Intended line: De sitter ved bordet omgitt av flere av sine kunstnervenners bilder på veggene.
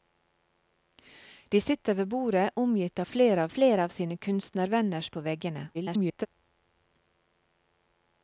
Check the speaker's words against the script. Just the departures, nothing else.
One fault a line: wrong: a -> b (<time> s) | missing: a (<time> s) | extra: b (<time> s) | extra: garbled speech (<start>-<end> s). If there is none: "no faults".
extra: flere (3.6 s)
missing: bilder (5.1 s)
extra: garbled speech (5.7-6.3 s)